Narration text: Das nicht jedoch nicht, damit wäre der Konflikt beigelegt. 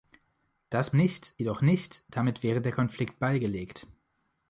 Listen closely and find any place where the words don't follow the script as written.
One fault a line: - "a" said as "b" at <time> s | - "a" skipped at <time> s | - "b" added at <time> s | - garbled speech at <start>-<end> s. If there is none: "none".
none